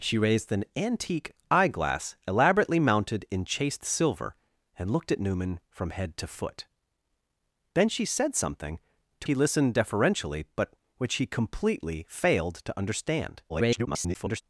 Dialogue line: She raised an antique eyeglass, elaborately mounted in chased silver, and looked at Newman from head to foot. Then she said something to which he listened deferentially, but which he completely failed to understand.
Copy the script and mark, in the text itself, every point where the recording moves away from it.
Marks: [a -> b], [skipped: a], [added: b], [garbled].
She raised an antique eyeglass, elaborately mounted in chased silver, and looked at Newman from head to foot. Then she said something to [skipped: which] he listened deferentially, but which he completely failed to understand. [garbled]